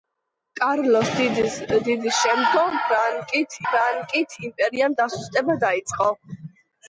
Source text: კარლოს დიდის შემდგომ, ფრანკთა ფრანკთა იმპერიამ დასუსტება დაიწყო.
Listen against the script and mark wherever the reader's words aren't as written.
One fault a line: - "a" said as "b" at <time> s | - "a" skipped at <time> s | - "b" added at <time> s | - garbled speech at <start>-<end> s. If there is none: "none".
none